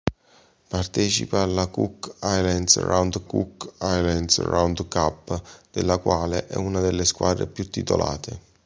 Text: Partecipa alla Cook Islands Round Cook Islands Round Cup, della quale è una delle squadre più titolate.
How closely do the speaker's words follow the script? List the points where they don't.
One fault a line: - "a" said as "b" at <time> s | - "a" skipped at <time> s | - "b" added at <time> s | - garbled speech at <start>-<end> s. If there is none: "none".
none